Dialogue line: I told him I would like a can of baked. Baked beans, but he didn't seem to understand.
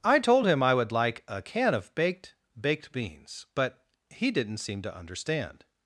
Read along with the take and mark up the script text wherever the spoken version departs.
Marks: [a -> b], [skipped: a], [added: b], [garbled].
I told him I would like a can of baked. Baked beans, but he didn't seem to understand.